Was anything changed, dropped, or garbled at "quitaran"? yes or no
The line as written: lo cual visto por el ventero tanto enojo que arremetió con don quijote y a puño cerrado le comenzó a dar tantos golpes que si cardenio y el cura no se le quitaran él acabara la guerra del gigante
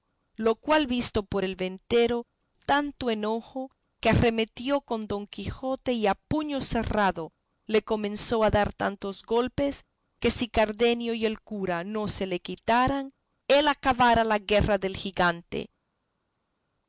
no